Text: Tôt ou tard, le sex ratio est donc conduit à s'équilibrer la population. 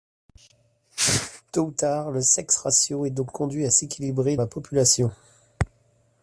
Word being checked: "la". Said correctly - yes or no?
yes